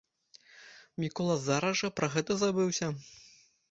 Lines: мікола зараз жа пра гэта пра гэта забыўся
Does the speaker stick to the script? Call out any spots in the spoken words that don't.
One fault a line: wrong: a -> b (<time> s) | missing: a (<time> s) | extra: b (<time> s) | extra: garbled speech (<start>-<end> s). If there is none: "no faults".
missing: пра гэта (2.4 s)